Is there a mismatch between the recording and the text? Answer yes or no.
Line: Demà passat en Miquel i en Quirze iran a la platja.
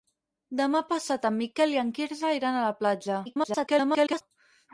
yes